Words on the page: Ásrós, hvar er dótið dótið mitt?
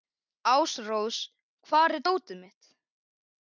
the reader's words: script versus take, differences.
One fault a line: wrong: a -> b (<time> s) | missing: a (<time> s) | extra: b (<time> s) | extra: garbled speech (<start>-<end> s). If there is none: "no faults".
missing: dótið (2.4 s)